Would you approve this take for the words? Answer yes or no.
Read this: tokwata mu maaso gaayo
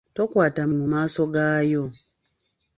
yes